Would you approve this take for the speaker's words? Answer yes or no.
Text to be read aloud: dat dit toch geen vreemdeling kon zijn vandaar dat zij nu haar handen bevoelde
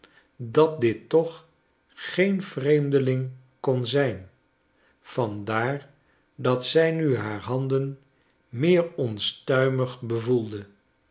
no